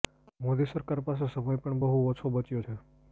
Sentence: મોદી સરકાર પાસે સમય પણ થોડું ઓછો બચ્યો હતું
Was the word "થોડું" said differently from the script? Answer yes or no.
yes